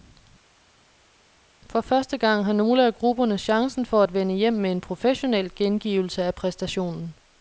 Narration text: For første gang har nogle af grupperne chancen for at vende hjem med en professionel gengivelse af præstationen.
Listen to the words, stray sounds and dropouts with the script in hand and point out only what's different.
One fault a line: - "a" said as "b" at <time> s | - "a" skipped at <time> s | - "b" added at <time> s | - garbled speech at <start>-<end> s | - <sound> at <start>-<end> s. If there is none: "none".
none